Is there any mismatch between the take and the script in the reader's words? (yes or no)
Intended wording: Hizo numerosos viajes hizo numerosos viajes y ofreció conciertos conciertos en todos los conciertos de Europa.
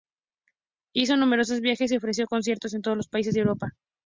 yes